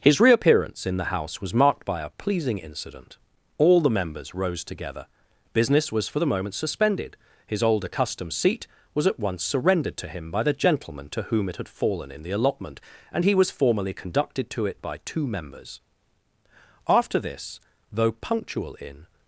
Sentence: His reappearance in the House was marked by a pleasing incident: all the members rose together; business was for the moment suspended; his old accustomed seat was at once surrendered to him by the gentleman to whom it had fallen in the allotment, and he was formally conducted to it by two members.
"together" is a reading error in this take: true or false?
false